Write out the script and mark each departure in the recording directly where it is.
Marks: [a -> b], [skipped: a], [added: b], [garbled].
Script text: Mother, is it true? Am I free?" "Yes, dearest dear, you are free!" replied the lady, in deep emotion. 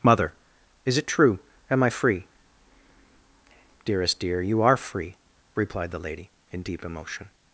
Mother, is it true? Am I free?" [skipped: "Yes,] dearest dear, you are free!" replied the lady, in deep emotion.